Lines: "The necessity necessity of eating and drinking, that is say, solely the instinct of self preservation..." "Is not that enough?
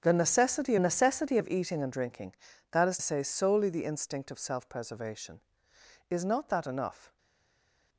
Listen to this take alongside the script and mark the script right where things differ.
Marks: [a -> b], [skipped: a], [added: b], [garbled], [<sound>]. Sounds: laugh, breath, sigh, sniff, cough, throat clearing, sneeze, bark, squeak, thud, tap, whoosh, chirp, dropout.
"The necessity necessity of eating and drinking, that is say, solely the instinct of self preservation..." "Is not that enough?